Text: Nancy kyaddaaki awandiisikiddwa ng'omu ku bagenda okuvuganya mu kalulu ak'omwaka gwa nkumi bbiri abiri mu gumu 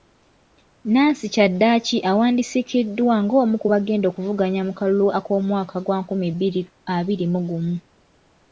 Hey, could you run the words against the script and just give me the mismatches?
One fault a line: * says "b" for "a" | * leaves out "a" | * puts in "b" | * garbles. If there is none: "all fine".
all fine